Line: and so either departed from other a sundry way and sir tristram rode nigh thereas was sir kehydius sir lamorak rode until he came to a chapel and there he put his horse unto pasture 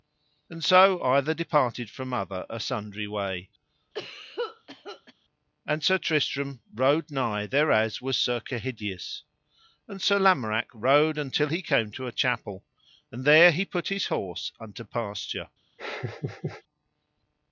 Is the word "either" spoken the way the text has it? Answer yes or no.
yes